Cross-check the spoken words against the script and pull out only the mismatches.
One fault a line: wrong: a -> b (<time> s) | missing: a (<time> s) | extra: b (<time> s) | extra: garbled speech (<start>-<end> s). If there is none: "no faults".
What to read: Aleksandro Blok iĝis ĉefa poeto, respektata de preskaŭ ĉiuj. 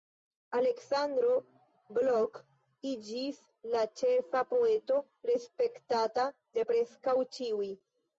extra: la (3.7 s)